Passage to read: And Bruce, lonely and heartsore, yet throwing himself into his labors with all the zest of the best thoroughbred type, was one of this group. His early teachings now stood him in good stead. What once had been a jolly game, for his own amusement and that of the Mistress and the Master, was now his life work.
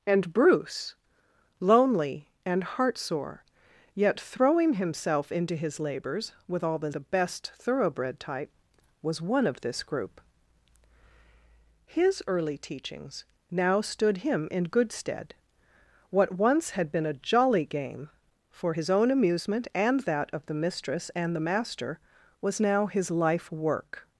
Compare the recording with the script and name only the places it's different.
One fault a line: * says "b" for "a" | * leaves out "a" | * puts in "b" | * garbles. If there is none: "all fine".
* leaves out "zest of"